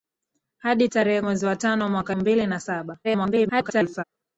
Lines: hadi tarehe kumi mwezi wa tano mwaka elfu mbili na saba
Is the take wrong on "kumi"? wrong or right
wrong